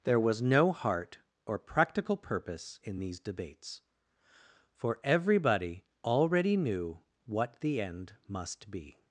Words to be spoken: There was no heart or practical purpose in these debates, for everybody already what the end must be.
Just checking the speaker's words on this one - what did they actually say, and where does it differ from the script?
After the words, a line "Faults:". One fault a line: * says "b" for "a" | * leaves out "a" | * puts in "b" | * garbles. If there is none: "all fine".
There was no heart or practical purpose in these debates, for everybody already knew what the end must be.
Faults:
* puts in "knew"